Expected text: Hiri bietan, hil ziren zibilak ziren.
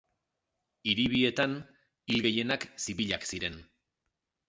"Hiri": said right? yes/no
yes